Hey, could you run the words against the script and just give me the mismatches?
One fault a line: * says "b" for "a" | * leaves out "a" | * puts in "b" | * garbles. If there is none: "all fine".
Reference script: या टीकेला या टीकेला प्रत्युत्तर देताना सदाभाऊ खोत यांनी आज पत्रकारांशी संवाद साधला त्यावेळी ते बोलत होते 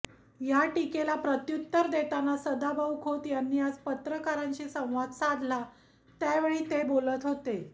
* leaves out "या टीकेला"